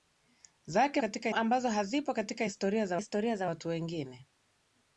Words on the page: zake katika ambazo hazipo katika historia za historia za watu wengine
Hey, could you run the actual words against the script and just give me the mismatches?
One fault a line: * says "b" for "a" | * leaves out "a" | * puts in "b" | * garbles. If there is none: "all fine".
all fine